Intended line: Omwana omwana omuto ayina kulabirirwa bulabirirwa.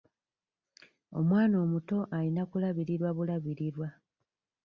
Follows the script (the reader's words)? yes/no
no